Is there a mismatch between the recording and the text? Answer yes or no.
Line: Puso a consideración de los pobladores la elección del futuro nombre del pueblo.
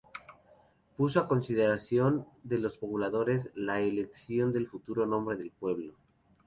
no